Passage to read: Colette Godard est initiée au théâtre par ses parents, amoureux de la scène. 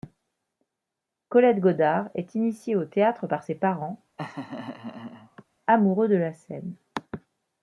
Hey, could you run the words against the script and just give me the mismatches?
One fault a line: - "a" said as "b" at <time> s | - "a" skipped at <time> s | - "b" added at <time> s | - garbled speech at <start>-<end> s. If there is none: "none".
none